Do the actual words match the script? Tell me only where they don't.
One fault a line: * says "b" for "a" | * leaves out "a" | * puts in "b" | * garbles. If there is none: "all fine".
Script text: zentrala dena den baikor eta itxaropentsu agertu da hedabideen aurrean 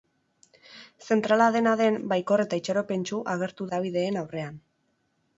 * leaves out "da"